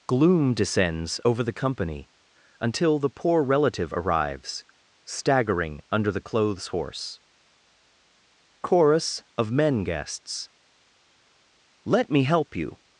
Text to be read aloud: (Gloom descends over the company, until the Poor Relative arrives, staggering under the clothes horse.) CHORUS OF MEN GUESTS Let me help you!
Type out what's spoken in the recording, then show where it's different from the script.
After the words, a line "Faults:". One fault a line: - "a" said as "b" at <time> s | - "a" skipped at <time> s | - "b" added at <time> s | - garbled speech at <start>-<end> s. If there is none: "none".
(Gloom descends over the company, until the Poor Relative arrives, staggering under the clothes horse.) CHORUS OF MEN GUESTS Let me help you!
Faults:
none